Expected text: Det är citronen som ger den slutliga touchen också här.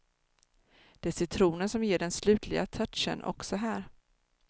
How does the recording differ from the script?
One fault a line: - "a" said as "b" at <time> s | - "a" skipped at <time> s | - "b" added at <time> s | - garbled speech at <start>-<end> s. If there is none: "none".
none